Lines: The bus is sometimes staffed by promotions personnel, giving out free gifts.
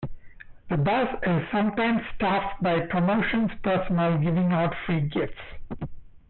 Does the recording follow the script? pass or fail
pass